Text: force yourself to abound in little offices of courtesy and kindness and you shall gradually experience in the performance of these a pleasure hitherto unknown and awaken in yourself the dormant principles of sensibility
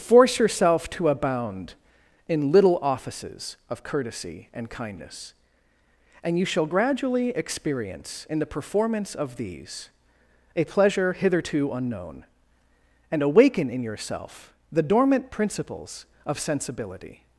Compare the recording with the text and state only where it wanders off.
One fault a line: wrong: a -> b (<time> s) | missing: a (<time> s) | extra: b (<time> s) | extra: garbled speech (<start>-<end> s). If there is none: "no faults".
no faults